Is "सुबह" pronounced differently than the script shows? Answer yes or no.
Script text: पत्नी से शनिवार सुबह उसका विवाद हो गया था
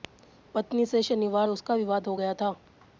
yes